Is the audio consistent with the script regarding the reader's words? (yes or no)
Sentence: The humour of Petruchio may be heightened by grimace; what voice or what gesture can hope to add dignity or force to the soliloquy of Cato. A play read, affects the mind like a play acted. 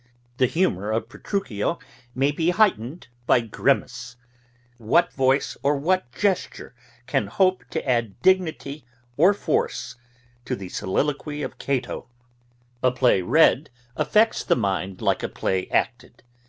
yes